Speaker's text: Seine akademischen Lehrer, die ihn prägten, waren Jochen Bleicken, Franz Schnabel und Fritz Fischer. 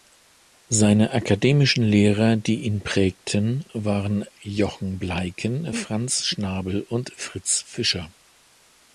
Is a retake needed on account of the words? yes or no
no